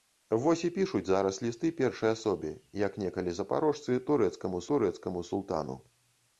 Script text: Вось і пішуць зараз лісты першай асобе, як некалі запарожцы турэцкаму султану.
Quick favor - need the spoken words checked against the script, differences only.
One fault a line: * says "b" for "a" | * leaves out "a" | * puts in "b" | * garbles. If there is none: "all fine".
* puts in "турэцкаму"